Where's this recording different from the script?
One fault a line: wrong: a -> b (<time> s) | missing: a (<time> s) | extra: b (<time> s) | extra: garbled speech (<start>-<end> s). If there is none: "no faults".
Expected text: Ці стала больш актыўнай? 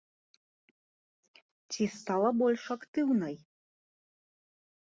no faults